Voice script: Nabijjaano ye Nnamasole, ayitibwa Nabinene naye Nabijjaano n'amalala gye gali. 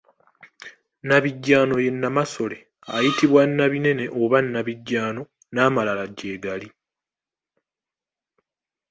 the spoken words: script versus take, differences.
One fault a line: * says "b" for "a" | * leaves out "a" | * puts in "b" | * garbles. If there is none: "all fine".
* says "oba" for "naye"